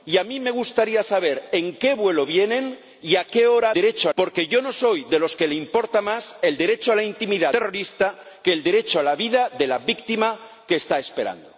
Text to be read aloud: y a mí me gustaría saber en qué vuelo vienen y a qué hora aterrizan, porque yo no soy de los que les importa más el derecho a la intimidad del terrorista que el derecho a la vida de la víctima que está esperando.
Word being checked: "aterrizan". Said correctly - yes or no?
no